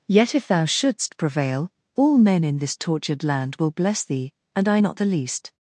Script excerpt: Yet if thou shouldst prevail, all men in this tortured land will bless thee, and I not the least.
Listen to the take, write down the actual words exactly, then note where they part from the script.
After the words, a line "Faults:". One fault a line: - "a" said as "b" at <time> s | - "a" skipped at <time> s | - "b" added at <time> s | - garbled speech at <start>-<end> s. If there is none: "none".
Yet if thou shouldst prevail, all men in this tortured land will bless thee, and I not the least.
Faults:
none